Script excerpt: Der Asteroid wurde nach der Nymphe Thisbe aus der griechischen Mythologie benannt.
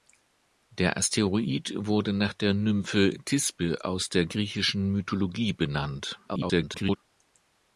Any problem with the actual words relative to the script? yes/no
yes